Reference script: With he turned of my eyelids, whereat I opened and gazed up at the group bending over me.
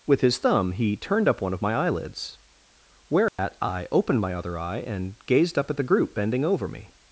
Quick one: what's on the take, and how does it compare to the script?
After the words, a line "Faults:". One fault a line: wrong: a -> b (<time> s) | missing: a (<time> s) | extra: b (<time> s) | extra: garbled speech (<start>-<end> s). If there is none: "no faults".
With his thumb he turned up one of my eyelids, whereat I opened my other eye and gazed up at the group bending over me.
Faults:
extra: his thumb (0.2 s)
extra: up one (1.3 s)
extra: my other eye (4.2 s)